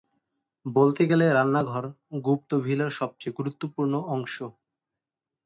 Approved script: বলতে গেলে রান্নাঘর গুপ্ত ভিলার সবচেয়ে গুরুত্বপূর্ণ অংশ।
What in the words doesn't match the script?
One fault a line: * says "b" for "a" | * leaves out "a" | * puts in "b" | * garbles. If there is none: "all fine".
all fine